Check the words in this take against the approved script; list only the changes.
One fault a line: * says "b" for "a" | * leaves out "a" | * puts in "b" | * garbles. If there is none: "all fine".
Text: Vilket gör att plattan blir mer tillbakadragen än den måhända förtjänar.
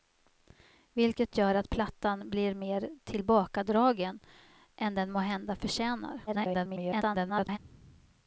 * garbles